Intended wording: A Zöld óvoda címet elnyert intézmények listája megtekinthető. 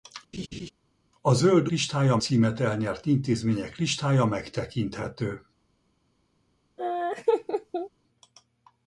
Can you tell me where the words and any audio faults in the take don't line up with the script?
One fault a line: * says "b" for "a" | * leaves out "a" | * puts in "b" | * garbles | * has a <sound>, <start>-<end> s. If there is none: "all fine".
* has a laugh, 0.3-0.7 s
* says "listája" for "óvoda"
* has a laugh, 6.8-7.9 s